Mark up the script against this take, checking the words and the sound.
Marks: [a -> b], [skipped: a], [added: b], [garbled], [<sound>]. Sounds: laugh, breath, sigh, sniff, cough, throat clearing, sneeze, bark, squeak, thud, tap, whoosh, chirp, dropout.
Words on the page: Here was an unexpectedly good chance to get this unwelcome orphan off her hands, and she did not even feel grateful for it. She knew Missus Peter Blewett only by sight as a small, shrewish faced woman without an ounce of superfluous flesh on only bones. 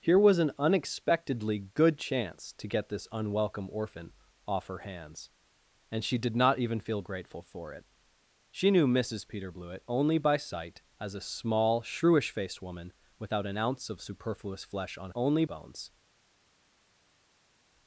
Here was an unexpectedly good chance to get this unwelcome orphan off her hands, and she did not even feel grateful for it. She knew Missus Peter Blewett only by sight as a small, shrewish faced woman without an ounce of superfluous flesh on only bones.